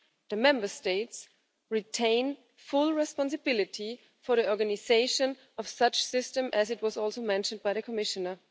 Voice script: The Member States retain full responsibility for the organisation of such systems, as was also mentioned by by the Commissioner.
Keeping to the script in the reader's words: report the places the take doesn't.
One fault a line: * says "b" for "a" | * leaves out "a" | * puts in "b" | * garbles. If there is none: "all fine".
* leaves out "by"